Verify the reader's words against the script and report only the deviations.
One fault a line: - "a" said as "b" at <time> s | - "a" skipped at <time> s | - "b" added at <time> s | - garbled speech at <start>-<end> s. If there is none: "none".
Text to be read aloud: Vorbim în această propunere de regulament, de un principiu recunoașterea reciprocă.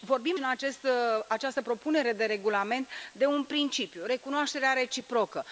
none